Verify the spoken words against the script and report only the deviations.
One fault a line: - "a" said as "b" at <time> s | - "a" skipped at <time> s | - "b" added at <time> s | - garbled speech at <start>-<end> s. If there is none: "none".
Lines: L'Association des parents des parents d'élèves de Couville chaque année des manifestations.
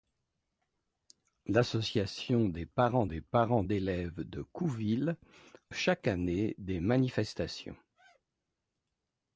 none